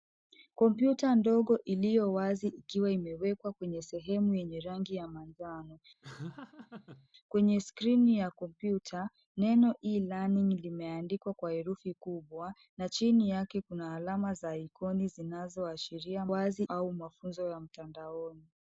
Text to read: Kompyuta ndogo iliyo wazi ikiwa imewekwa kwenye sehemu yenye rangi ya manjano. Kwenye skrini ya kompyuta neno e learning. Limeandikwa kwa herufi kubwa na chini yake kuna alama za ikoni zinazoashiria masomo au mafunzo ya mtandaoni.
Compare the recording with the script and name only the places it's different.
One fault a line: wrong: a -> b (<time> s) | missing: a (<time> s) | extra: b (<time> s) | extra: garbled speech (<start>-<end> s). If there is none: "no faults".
wrong: masomo -> wazi (16.3 s)